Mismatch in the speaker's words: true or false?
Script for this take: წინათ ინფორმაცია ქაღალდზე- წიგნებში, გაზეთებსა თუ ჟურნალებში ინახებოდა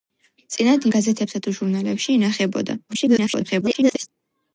true